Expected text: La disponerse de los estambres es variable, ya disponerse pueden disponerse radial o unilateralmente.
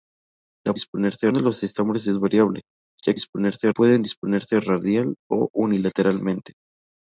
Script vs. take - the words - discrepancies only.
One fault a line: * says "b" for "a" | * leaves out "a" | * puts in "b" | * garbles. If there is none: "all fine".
all fine